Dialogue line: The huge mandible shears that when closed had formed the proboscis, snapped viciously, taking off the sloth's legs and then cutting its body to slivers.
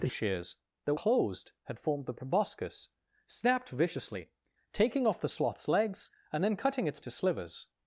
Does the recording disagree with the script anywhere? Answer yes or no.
yes